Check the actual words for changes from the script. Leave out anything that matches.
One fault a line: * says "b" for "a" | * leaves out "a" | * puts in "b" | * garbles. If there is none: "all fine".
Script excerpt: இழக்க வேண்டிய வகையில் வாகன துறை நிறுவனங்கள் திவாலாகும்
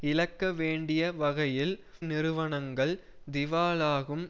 * leaves out "வாகன துறை"